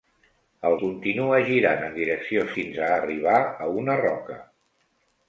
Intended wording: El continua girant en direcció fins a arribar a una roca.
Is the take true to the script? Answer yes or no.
yes